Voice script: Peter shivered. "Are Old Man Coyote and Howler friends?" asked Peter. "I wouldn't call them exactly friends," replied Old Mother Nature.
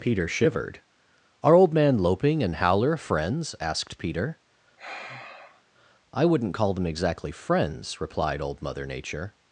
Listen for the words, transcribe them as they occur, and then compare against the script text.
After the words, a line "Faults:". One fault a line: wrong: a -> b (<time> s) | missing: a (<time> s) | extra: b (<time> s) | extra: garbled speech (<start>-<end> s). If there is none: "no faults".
Peter shivered. "Are Old Man Loping and Howler friends?" asked Peter. "I wouldn't call them exactly friends," replied Old Mother Nature.
Faults:
wrong: Coyote -> Loping (2.0 s)